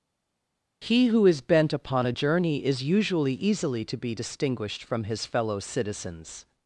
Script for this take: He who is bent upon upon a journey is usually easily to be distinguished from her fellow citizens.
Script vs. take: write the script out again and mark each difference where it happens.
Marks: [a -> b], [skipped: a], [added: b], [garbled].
He who is bent upon [skipped: upon] a journey is usually easily to be distinguished from [her -> his] fellow citizens.